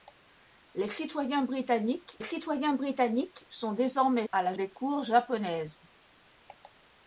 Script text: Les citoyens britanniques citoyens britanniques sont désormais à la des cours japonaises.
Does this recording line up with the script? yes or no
yes